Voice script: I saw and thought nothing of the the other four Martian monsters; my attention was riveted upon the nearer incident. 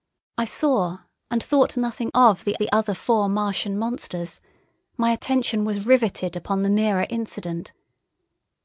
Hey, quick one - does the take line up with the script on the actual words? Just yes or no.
yes